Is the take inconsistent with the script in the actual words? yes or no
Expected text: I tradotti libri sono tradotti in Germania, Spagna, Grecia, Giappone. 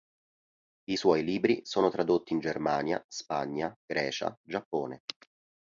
yes